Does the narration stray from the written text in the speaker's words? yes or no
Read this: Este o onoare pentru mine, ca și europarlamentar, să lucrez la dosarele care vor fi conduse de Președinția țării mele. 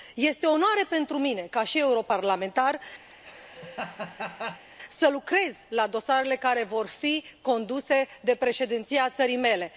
no